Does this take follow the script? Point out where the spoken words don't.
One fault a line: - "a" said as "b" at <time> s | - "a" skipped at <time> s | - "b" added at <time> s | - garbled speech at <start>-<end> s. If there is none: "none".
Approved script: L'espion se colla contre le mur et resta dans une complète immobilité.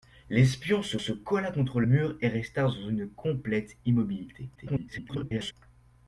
- "se" added at 1.0 s
- "le" skipped at 1.8 s
- garbled speech at 4.6-5.5 s